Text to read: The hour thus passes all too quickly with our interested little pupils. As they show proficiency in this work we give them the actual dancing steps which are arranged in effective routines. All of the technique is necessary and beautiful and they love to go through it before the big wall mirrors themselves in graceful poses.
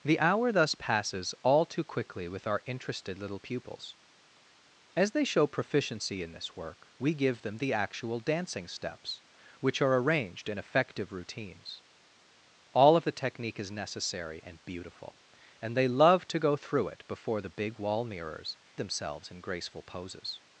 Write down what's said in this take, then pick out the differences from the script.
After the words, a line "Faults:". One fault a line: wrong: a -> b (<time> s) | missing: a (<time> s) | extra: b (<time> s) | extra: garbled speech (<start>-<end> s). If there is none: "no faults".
The hour thus passes all too quickly with our interested little pupils. As they show proficiency in this work we give them the actual dancing steps which are arranged in effective routines. All of the technique is necessary and beautiful and they love to go through it before the big wall mirrors themselves in graceful poses.
Faults:
no faults